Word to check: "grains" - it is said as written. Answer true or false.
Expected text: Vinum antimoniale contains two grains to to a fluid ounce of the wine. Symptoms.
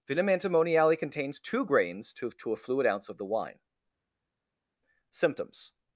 true